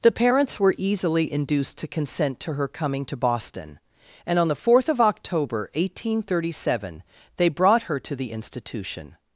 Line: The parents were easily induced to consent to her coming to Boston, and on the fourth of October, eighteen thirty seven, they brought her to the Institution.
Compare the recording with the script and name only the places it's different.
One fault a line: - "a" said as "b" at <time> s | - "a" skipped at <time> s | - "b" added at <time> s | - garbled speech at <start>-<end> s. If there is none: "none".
none